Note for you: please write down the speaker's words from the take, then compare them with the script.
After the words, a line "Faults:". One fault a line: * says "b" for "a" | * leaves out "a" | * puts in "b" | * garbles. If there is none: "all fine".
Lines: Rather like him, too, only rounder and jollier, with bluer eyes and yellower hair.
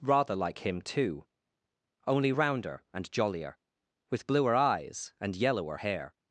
Rather like him, too, only rounder and jollier, with bluer eyes and yellower hair.
Faults:
all fine